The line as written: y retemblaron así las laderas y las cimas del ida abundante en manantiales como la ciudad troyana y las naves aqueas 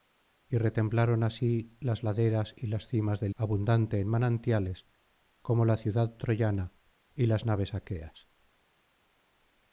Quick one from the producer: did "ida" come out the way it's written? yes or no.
no